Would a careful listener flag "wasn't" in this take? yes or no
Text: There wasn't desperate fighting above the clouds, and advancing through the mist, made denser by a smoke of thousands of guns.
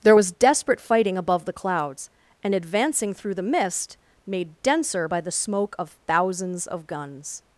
yes